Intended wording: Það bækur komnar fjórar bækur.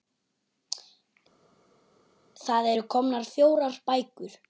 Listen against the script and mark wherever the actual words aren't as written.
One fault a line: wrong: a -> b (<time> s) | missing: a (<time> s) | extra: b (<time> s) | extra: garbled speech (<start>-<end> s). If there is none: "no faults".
wrong: bækur -> eru (2.7 s)